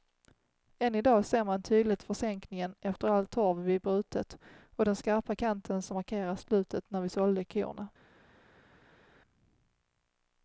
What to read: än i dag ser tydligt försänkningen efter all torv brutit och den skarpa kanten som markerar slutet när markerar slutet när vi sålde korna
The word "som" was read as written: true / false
true